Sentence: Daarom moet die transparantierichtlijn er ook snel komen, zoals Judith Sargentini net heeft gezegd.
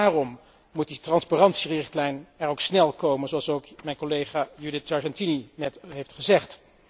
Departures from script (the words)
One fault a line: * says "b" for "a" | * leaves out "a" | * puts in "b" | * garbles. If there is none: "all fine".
* puts in "ook mijn collega"